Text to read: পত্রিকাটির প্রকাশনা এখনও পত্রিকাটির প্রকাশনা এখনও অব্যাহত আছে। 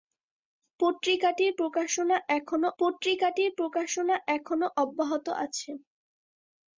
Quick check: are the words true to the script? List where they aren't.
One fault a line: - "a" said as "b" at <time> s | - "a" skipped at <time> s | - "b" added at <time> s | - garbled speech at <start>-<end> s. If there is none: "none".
none